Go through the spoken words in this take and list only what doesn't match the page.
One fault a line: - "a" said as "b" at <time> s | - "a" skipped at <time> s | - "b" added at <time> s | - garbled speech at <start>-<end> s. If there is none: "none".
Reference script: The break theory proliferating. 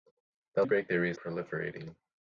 none